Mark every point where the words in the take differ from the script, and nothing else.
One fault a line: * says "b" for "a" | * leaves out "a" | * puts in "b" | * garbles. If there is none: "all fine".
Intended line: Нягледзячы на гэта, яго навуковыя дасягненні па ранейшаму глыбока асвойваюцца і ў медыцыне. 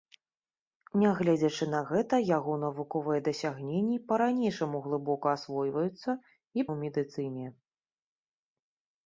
all fine